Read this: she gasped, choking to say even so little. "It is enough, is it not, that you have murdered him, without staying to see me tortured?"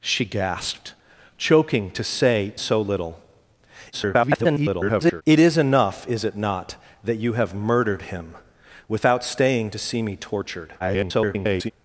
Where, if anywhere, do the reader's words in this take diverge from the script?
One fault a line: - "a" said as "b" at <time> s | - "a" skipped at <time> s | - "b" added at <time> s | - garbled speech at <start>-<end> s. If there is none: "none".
- "even" skipped at 2.5 s
- garbled speech at 3.9-5.2 s
- garbled speech at 10.8-11.7 s